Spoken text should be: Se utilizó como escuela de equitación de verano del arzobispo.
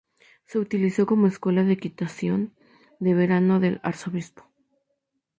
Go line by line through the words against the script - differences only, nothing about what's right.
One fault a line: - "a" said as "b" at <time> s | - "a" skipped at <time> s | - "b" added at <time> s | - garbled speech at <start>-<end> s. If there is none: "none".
none